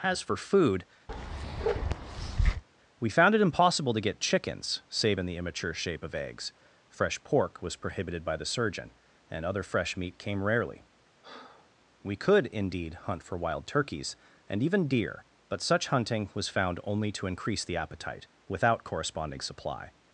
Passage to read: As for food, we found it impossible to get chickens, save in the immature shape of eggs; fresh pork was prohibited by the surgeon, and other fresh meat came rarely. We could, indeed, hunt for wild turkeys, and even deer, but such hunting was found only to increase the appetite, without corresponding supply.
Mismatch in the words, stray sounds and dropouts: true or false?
true